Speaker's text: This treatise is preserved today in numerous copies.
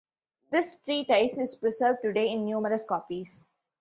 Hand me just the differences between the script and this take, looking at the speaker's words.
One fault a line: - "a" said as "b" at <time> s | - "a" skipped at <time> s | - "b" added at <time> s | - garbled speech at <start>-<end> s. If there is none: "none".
none